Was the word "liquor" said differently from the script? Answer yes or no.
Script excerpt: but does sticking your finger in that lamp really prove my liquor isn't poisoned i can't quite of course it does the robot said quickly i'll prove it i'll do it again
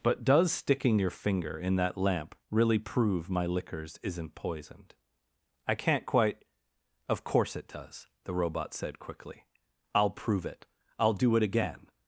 yes